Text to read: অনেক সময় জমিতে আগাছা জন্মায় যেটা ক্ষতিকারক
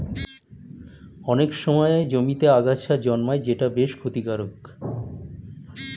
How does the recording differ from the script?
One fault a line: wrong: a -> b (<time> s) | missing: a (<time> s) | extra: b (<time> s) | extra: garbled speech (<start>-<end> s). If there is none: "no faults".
extra: বেশ (3.7 s)